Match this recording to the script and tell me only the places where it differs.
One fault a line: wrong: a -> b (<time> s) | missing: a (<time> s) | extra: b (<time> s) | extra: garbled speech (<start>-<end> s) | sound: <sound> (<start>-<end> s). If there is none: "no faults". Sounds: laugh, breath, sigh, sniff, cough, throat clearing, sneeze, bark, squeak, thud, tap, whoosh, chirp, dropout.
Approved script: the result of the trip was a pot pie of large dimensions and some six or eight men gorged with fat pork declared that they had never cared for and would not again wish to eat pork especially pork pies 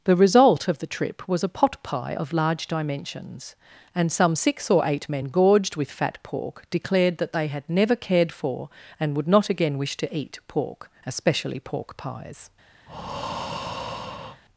sound: breath (12.9-14.4 s)